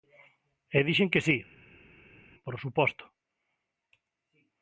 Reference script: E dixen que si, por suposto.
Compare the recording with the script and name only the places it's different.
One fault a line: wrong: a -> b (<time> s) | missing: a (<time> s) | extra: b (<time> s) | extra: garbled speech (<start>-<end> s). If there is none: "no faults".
no faults